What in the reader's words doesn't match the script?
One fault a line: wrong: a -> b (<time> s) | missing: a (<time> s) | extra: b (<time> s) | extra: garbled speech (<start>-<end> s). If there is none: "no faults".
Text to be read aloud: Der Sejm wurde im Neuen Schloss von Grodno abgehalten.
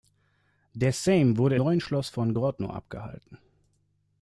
missing: im (1.6 s)